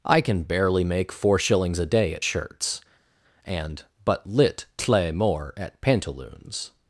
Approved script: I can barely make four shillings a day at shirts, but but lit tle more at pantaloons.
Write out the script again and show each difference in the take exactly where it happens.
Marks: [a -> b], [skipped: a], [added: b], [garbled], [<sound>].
I can barely make four shillings a day at shirts, [but -> and] but lit tle more at pantaloons.